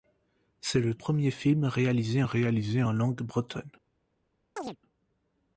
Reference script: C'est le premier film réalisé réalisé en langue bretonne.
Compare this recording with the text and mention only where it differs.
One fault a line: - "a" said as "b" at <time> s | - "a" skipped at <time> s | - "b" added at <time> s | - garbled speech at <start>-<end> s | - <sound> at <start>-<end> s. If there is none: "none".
- chirp at 4.6-4.8 s